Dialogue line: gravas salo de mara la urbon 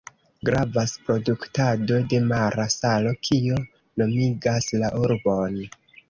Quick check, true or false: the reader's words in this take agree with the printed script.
false